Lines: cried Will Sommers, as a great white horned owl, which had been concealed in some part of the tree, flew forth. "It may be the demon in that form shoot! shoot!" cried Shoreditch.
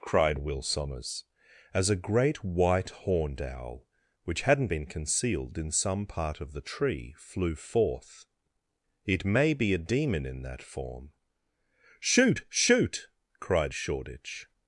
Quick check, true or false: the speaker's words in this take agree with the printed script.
false